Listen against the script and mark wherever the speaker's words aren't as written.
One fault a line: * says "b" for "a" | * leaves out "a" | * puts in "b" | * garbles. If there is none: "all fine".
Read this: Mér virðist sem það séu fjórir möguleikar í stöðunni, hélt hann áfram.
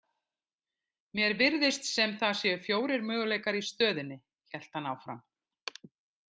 all fine